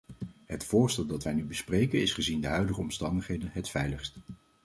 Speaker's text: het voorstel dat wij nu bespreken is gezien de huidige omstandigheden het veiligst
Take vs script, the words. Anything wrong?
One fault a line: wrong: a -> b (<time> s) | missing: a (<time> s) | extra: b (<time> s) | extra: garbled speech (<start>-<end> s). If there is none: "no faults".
no faults